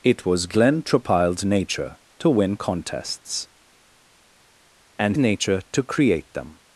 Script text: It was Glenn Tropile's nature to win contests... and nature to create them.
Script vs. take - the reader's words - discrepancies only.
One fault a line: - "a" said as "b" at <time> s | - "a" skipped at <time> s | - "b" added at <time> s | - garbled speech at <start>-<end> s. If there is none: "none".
none